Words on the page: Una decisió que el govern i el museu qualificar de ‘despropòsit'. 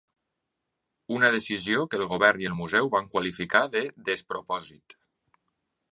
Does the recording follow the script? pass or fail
fail